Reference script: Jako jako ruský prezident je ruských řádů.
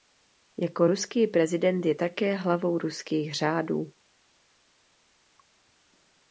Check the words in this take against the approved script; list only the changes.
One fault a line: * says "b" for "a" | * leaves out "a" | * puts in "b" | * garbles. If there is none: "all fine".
* leaves out "jako"
* puts in "také hlavou"